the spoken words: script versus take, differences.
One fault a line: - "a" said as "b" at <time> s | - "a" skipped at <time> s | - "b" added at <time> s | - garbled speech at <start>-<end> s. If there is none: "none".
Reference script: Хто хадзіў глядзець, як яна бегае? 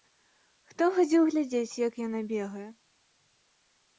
none